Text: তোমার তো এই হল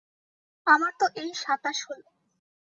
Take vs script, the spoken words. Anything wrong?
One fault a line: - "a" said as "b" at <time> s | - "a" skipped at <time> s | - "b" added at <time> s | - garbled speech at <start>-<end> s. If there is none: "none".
- "তোমার" said as "আমার" at 0.7 s
- "সাতাশ" added at 1.3 s